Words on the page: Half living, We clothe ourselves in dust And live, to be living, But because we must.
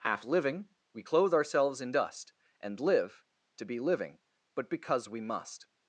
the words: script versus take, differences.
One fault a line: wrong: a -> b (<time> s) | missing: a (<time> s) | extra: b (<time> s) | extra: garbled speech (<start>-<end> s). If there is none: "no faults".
no faults